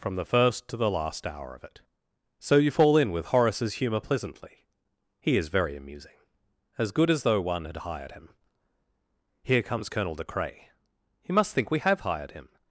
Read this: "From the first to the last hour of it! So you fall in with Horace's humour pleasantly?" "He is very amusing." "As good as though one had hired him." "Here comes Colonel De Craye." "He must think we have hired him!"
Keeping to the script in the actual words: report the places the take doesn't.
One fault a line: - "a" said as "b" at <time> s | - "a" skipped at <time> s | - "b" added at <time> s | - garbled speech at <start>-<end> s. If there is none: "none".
none